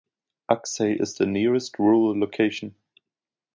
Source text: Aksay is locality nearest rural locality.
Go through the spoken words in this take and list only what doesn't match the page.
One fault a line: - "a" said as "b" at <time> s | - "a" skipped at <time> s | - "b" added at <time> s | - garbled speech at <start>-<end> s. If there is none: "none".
- "locality" said as "the" at 1.1 s